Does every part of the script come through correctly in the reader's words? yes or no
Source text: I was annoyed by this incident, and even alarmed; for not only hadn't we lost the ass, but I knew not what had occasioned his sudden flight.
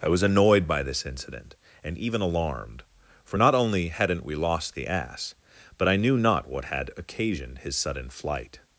yes